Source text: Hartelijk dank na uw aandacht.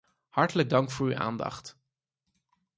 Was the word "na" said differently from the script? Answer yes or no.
yes